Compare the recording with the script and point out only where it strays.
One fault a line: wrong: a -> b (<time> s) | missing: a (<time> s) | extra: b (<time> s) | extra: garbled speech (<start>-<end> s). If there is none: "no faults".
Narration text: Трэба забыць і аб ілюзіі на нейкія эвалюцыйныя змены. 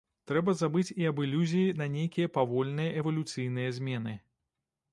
extra: павольныя (2.4 s)